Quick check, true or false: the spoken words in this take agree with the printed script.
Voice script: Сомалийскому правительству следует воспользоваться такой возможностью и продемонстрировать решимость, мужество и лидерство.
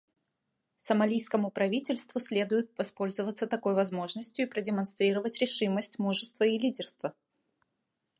true